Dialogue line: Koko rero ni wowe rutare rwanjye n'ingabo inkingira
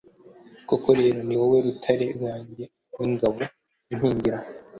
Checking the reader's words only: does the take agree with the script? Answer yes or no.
yes